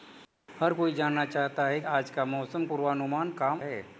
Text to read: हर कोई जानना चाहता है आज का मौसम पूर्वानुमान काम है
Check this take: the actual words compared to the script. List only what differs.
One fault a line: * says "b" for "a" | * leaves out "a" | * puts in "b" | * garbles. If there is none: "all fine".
all fine